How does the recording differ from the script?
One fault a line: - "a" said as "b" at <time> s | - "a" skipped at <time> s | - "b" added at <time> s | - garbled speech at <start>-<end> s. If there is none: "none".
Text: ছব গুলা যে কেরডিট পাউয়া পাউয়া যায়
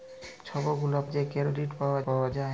none